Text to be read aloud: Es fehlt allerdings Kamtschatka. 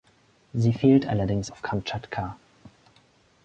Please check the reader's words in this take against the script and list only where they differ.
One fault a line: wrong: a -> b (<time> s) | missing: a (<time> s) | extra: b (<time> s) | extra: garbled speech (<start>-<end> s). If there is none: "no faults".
wrong: Es -> Sie (0.5 s)
extra: auf (1.5 s)